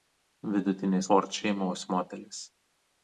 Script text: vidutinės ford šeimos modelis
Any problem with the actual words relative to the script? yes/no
no